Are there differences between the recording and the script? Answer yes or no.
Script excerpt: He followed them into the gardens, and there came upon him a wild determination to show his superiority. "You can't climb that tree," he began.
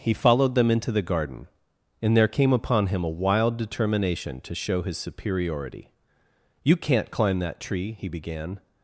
yes